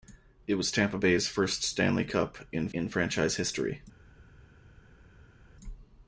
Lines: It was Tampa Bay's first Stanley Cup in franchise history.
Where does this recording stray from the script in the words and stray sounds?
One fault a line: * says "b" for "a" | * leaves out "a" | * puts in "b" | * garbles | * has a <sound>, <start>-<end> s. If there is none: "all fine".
* puts in "in"